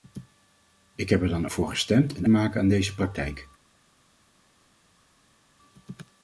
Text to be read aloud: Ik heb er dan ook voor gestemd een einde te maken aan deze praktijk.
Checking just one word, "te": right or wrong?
wrong